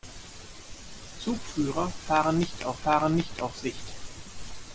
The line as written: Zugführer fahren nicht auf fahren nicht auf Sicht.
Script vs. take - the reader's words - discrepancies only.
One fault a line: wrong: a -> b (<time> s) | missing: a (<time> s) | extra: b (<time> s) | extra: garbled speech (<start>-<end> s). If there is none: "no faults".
no faults